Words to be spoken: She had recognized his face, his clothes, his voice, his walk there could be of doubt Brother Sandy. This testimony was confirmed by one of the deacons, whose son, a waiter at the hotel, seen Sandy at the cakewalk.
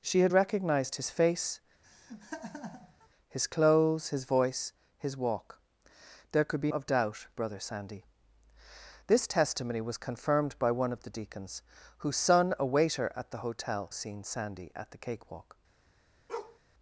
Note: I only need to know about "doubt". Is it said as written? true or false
true